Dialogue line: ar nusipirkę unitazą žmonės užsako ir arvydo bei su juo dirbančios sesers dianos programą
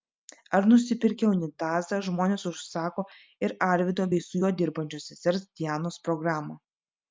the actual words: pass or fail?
pass